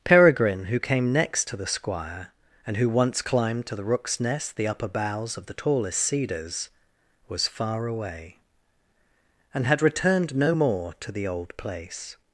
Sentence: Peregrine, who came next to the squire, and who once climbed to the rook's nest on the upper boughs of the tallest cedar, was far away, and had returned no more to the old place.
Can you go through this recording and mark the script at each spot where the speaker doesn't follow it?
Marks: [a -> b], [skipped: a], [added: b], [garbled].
Peregrine, who came next to the squire, and who once climbed to the rook's nest [skipped: on] the upper boughs of the tallest [cedar, -> cedars] was far away, and had returned no more to the old place.